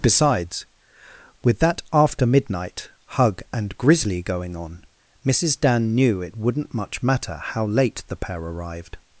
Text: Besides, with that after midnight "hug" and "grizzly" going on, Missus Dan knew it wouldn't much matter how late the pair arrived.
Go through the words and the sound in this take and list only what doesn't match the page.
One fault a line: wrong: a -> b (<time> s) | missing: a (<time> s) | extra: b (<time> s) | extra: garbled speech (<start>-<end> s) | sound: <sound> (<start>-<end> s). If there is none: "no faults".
no faults